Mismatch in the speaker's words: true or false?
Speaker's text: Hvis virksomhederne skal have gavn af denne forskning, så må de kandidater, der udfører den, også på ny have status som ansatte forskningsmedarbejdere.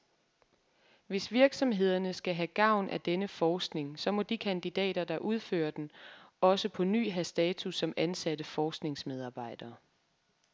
false